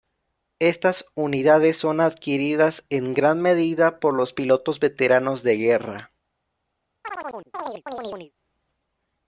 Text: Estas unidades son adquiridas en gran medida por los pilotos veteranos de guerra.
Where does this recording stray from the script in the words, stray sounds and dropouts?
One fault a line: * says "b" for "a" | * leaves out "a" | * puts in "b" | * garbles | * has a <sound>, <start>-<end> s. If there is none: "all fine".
* has a chirp, 7.0-8.3 s